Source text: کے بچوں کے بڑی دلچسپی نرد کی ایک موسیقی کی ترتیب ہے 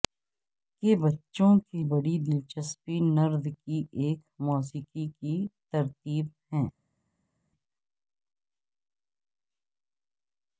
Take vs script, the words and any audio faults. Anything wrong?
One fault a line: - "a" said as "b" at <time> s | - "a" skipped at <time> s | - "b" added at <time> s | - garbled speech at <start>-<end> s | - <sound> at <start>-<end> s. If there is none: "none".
none